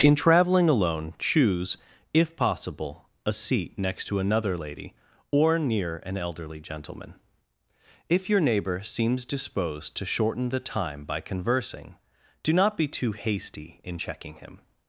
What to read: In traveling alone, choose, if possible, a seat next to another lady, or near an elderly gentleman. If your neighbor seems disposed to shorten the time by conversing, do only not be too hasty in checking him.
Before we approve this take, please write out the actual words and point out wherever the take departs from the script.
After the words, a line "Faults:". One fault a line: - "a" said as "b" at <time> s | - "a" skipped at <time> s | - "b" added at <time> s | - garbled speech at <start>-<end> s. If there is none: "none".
In traveling alone, choose, if possible, a seat next to another lady, or near an elderly gentleman. If your neighbor seems disposed to shorten the time by conversing, do not be too hasty in checking him.
Faults:
- "only" skipped at 12.5 s